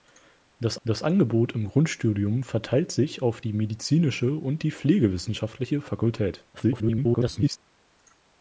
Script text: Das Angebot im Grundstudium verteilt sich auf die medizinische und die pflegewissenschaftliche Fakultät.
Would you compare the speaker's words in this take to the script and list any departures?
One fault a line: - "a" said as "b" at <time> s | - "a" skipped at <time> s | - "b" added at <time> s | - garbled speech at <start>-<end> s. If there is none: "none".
- "das" added at 0.8 s
- garbled speech at 6.5-7.6 s